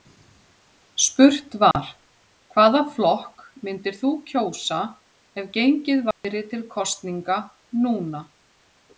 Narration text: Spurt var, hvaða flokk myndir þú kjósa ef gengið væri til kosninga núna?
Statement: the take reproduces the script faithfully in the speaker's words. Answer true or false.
true